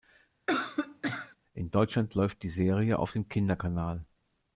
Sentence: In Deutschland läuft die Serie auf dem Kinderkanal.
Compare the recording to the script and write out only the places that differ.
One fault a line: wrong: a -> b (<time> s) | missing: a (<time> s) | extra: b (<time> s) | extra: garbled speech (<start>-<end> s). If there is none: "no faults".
no faults